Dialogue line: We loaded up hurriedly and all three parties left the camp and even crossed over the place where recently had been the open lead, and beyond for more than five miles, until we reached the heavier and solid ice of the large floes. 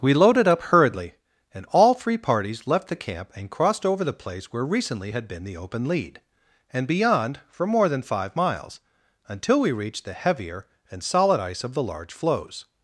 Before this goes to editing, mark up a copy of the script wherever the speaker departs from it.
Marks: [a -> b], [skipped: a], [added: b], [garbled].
We loaded up hurriedly and all three parties left the camp and [skipped: even] crossed over the place where recently had been the open lead, and beyond for more than five miles, until we reached the heavier and solid ice of the large floes.